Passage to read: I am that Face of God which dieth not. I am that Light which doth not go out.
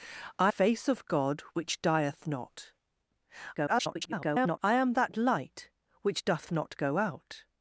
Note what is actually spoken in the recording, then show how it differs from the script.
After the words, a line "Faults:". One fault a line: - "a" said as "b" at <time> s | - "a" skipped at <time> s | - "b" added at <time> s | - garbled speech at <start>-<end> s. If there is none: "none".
I Face of God which dieth not. [garbled] I am that Light which doth not go out.
Faults:
- "am that" skipped at 0.5 s
- garbled speech at 3.6-4.6 s